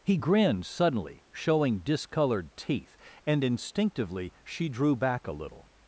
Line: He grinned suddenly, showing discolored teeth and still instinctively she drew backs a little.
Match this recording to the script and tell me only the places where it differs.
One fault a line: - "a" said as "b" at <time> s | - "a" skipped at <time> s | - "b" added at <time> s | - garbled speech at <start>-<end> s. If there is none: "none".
- "still" skipped at 3.4 s
- "backs" said as "back" at 4.9 s